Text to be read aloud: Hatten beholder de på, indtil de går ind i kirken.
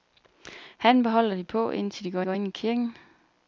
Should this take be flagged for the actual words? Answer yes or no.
yes